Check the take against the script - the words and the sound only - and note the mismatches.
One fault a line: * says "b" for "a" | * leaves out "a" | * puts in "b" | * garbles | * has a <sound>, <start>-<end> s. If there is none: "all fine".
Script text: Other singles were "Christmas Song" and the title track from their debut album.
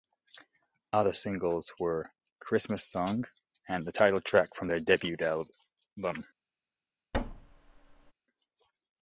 * has a thud, 7.1-8.1 s